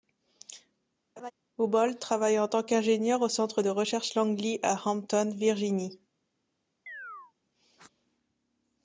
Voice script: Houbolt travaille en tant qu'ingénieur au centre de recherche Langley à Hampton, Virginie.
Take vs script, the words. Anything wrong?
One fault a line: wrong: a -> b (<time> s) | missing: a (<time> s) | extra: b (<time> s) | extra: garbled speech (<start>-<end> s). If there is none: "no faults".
no faults